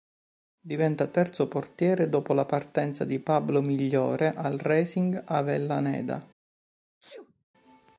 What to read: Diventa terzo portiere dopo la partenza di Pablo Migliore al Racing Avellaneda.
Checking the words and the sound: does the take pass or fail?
fail